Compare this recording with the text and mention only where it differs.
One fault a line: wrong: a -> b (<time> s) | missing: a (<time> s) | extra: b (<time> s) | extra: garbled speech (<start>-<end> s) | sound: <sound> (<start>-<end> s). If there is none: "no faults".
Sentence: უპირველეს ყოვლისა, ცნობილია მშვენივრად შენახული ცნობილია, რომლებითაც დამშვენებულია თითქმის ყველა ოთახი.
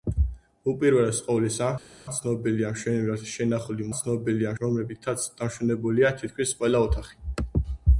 no faults